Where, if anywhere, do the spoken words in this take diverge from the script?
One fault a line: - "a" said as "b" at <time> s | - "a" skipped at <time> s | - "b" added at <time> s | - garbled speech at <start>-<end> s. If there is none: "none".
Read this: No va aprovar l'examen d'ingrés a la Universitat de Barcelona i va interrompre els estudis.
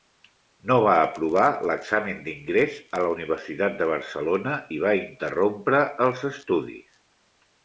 none